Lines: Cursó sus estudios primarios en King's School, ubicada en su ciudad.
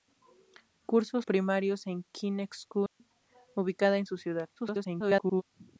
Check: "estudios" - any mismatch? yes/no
yes